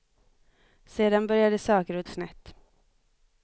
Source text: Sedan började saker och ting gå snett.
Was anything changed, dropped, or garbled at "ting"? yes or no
yes